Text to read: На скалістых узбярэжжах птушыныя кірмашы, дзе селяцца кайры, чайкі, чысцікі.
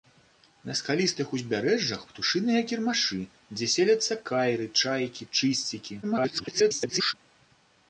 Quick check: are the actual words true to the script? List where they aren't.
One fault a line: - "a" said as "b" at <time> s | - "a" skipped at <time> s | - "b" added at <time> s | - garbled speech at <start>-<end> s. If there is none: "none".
- garbled speech at 6.0-7.1 s